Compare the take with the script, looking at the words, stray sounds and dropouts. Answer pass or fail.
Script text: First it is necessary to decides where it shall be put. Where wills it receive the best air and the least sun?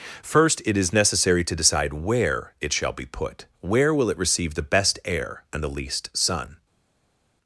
fail